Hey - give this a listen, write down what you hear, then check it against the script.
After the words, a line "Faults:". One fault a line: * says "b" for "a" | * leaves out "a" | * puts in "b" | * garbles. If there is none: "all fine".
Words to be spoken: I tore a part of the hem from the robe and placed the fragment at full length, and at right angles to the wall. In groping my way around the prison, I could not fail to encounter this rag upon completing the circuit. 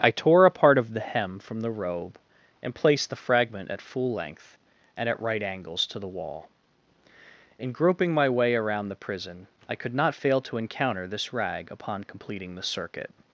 I tore a part of the hem from the robe and placed the fragment at full length, and at right angles to the wall. In groping my way around the prison, I could not fail to encounter this rag upon completing the circuit.
Faults:
all fine